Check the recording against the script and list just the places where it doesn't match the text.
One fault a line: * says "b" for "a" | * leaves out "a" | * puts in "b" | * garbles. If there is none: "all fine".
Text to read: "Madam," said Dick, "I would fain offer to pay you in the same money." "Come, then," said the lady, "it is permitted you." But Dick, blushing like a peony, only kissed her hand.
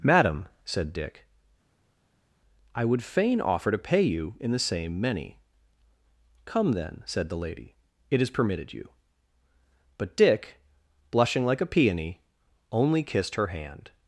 * says "many" for "money"